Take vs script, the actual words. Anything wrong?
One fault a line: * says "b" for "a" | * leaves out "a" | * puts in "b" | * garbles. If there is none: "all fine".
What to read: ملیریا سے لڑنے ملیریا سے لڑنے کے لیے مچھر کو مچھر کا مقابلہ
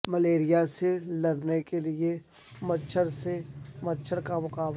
* leaves out "ملیریا سے لڑنے"
* says "سے" for "کو"